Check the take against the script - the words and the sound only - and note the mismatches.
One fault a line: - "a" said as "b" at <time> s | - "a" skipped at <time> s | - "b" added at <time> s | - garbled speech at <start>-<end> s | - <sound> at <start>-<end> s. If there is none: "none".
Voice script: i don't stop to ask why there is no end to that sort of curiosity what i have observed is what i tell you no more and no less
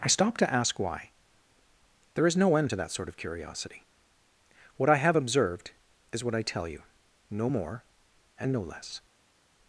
- "don't" skipped at 0.1 s